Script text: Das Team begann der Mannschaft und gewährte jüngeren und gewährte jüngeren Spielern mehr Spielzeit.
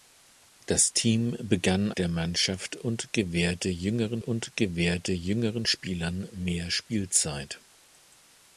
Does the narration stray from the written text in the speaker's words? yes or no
no